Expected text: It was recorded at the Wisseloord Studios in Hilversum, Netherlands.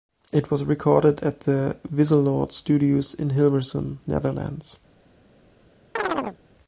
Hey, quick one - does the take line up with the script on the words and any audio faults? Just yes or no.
no